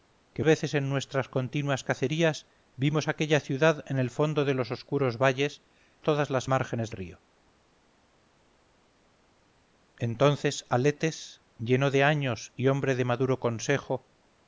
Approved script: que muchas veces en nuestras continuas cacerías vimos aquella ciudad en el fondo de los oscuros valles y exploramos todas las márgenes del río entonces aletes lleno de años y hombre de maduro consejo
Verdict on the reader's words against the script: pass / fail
fail